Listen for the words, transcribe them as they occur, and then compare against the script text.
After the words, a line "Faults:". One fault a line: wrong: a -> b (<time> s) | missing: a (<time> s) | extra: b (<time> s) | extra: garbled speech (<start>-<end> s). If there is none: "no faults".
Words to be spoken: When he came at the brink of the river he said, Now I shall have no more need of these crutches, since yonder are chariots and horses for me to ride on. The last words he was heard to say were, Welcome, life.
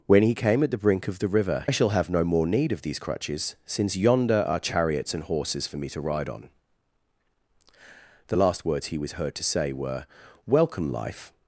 When he came at the brink of the river I shall have no more need of these crutches, since yonder are chariots and horses for me to ride on. The last words he was heard to say were, Welcome, life.
Faults:
missing: he said Now (1.7 s)